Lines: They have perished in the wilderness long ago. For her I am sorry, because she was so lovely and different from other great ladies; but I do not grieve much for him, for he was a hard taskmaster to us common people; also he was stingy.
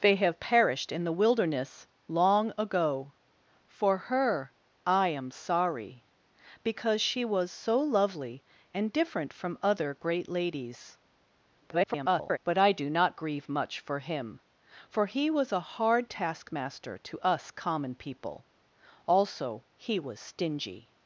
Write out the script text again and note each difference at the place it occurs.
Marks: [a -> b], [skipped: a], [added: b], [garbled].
They have perished in the wilderness long ago. For her I am sorry, because she was so lovely and different from other great ladies; [garbled] but I do not grieve much for him, for he was a hard taskmaster to us common people; also he was stingy.